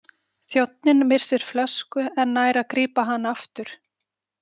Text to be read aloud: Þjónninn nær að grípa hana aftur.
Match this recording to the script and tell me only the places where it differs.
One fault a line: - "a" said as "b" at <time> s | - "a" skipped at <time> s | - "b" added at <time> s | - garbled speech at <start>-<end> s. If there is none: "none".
- "missir flösku en" added at 1.1 s